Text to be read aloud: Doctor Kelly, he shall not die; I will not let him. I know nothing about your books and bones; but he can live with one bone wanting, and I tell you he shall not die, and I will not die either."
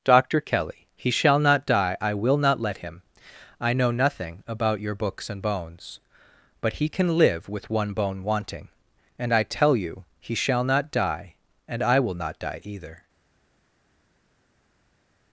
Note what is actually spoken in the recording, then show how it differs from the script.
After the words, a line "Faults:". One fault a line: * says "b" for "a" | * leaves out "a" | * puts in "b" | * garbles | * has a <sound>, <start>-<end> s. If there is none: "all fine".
Doctor Kelly, he shall not die; I will not let him. I know nothing about your books and bones; but he can live with one bone wanting, and I tell you he shall not die, and I will not die either."
Faults:
all fine